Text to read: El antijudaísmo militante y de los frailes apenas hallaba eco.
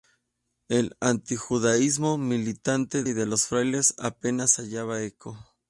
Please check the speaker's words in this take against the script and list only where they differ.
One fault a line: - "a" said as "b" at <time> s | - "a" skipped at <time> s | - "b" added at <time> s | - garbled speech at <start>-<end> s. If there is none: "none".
none